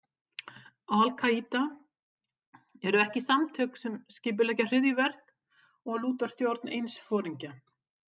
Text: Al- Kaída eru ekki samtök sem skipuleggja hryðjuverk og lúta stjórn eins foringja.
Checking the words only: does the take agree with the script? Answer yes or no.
yes